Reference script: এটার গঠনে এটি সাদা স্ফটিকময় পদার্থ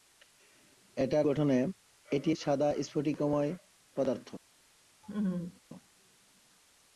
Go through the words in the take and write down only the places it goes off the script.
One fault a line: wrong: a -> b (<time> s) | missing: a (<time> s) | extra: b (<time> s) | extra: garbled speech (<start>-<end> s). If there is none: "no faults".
no faults